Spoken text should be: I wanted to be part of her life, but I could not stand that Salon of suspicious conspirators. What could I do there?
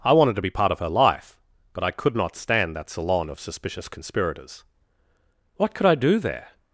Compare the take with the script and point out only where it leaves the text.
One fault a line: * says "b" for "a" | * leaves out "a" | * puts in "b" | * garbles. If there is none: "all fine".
all fine